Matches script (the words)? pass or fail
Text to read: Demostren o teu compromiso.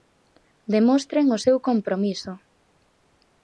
fail